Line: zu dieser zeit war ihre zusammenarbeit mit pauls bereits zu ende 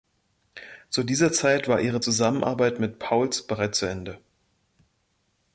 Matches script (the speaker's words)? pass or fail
pass